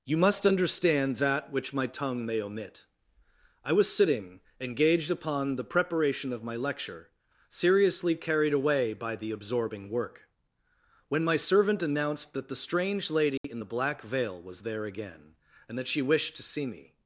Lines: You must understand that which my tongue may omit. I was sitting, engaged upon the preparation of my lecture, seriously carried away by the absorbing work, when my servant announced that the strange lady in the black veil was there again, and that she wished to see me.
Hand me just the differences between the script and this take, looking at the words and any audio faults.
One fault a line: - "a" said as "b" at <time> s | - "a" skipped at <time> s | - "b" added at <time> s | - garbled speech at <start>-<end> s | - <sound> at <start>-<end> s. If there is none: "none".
- dropout at 13.4-13.4 s